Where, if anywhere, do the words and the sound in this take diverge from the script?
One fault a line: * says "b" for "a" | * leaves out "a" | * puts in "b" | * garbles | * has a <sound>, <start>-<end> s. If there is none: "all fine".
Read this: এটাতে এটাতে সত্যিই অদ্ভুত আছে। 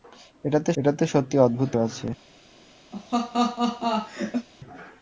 * has a laugh, 2.9-4.5 s